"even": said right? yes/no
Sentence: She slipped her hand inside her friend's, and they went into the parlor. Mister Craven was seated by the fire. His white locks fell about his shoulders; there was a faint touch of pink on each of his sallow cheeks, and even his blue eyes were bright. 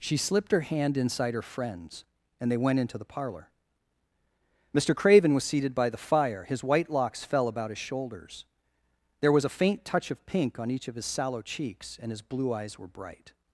no